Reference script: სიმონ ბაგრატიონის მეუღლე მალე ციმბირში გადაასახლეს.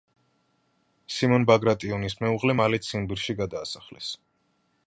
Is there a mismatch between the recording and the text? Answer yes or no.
no